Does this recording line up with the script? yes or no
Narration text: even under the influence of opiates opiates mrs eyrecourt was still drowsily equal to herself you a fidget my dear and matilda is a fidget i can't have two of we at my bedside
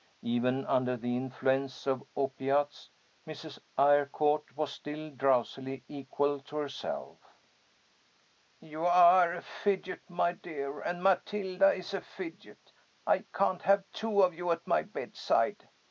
no